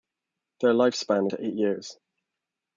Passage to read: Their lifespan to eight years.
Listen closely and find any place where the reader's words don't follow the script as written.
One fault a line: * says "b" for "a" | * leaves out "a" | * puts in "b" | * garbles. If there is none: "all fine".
all fine